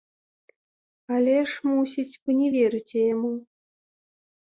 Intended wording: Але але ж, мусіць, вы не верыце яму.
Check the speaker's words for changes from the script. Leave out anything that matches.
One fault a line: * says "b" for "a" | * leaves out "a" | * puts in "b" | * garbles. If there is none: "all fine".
* leaves out "але"